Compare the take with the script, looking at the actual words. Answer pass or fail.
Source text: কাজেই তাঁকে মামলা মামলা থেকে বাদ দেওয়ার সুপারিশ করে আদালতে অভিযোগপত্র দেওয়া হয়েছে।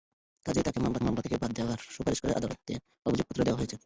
pass